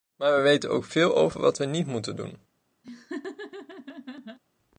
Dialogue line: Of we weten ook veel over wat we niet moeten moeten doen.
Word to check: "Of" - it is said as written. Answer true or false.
false